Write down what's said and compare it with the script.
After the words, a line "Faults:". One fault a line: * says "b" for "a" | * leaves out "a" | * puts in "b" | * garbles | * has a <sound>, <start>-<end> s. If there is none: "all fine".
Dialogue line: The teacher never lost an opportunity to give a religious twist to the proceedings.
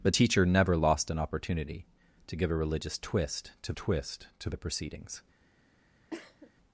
The teacher never lost an opportunity to give a religious twist to twist to the proceedings.
Faults:
* puts in "twist to"
* has a cough, 6.1-6.5 s